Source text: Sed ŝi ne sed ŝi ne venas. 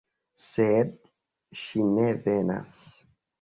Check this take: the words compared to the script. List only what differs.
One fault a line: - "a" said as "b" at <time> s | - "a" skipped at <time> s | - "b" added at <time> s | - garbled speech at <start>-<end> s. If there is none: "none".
- "sed ŝi ne" skipped at 2.1 s